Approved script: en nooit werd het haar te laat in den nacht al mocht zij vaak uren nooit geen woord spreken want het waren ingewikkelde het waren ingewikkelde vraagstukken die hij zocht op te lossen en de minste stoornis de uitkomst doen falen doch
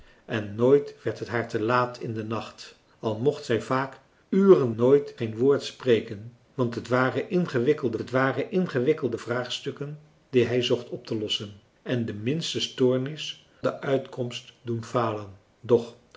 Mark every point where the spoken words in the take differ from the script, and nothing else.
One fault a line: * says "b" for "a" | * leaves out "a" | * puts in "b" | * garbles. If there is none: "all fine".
all fine